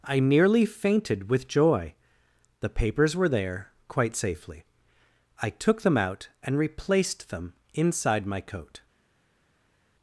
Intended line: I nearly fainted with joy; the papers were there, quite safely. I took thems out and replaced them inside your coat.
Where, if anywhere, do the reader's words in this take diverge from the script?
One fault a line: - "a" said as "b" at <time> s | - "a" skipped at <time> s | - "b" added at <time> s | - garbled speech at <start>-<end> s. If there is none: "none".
- "thems" said as "them" at 5.8 s
- "your" said as "my" at 8.2 s